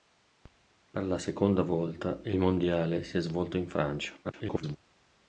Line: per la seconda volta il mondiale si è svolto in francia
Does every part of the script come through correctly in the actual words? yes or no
no